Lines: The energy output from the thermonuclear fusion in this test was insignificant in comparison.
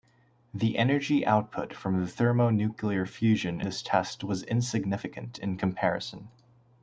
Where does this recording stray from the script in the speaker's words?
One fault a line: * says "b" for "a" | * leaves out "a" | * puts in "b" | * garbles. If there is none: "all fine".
* leaves out "in"